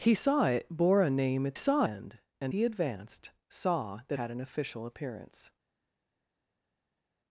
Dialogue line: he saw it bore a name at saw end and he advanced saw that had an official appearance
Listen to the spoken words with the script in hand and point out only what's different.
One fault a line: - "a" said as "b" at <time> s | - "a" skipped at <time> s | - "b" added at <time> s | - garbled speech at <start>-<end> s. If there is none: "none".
none